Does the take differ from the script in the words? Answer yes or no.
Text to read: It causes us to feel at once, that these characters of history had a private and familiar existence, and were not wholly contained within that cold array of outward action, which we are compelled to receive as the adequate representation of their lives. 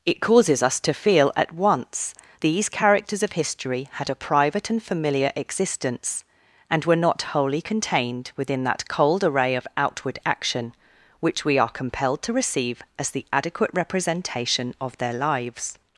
yes